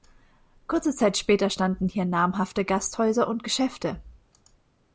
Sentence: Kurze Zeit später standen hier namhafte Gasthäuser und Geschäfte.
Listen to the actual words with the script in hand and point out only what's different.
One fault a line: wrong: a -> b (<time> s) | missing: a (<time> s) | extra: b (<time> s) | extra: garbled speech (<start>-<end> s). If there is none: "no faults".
no faults